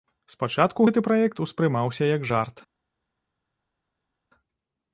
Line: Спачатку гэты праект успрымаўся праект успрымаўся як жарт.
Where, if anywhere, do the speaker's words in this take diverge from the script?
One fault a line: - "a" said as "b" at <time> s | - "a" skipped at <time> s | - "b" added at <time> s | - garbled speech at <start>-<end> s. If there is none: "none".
- "праект успрымаўся" skipped at 2.1 s